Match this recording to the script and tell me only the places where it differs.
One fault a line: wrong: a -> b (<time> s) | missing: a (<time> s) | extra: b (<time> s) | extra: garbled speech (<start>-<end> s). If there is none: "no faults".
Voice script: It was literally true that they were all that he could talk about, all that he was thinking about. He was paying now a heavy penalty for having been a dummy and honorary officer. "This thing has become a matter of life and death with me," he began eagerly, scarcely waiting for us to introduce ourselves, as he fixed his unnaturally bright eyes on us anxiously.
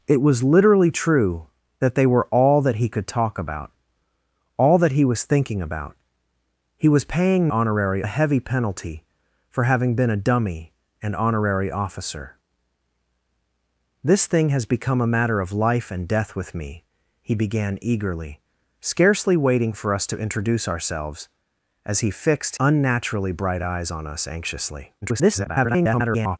wrong: now -> honorary (7.5 s)
missing: his (22.6 s)
extra: garbled speech (25.0-26.4 s)